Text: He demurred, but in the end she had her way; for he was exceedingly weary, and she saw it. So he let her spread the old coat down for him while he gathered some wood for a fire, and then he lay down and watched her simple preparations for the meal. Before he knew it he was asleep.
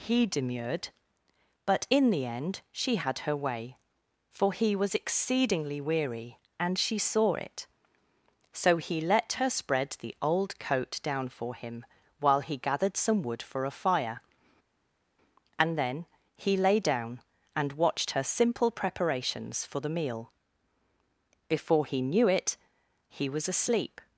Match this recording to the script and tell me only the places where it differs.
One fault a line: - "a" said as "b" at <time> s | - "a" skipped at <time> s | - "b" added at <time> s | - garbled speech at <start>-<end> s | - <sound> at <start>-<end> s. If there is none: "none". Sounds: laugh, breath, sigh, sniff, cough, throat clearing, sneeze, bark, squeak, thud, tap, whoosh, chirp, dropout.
none